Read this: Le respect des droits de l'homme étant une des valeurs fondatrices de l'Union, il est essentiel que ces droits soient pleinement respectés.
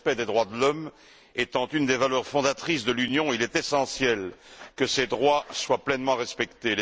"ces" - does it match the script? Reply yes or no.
yes